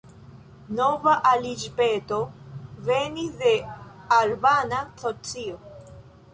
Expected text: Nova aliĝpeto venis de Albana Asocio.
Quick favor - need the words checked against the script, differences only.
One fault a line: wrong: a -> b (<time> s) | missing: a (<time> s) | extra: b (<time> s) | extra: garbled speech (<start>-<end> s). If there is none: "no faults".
no faults